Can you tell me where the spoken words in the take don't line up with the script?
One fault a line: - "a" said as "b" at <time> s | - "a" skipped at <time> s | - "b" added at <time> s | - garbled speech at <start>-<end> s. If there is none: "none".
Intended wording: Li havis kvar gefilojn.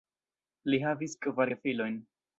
none